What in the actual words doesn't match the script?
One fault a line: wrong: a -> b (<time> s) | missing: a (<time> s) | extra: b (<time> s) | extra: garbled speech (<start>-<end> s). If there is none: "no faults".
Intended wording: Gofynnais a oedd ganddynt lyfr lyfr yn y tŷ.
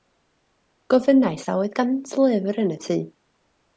missing: lyfr (2.6 s)